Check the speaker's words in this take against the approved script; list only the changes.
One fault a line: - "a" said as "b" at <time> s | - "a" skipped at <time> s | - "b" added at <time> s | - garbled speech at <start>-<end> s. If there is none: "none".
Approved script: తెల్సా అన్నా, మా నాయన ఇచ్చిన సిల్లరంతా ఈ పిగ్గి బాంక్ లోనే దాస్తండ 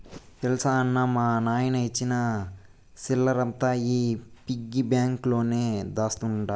none